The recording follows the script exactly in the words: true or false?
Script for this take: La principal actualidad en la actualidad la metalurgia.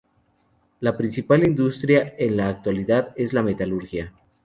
false